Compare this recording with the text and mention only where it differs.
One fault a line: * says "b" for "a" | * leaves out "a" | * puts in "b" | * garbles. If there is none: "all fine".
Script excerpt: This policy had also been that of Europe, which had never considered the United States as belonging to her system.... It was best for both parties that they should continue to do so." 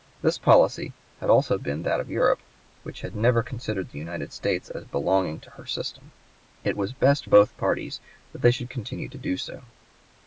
* leaves out "for"